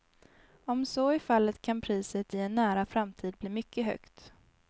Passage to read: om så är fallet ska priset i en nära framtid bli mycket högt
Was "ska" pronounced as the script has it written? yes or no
no